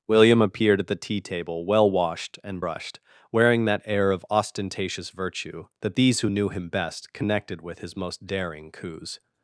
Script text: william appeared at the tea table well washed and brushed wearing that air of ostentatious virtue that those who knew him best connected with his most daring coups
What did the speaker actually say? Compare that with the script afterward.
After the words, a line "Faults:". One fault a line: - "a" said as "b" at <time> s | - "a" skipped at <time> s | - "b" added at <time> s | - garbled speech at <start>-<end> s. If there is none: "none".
william appeared at the tea table well washed and brushed wearing that air of ostentatious virtue that these who knew him best connected with his most daring coups
Faults:
- "those" said as "these" at 5.9 s